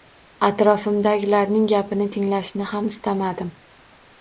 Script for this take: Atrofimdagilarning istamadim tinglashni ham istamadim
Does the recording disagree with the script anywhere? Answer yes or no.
yes